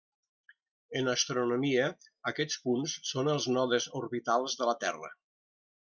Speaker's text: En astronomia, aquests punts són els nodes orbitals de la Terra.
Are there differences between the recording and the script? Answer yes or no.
no